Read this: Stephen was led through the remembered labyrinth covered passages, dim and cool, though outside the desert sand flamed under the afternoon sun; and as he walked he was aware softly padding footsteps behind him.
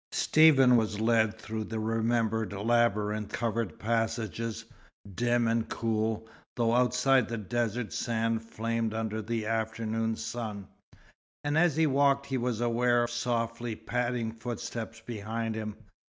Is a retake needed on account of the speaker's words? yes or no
no